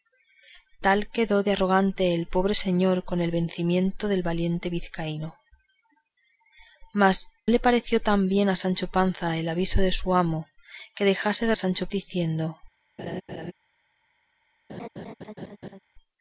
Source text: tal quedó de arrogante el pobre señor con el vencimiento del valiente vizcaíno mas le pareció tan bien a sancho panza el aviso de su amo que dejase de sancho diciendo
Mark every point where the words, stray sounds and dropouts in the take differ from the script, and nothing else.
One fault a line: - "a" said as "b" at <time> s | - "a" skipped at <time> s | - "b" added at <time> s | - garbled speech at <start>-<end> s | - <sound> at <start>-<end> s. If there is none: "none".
- laugh at 13.0-13.5 s
- laugh at 14.7-15.8 s